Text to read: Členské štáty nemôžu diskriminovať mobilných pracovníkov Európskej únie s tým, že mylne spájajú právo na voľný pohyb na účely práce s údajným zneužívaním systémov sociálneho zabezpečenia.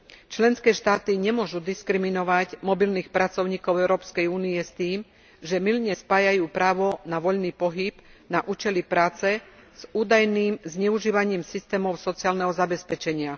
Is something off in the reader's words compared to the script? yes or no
no